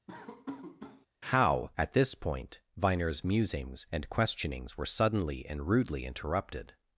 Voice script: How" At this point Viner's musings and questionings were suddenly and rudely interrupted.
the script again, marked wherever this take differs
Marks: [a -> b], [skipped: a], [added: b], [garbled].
How" At this point Viner's musings and questionings were suddenly and rudely interrupted.